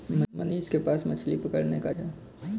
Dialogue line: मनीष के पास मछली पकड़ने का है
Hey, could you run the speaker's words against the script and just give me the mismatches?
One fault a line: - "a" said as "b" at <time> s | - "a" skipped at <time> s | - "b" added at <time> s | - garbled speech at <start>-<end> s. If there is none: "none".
none